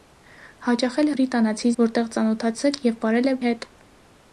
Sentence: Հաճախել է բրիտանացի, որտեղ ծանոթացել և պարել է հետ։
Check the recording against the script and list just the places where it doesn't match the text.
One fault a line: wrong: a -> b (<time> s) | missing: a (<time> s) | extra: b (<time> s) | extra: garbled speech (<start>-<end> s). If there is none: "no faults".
no faults